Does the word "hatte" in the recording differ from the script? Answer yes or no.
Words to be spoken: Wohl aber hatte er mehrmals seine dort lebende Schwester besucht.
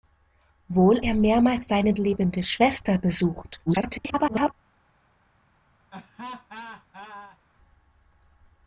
yes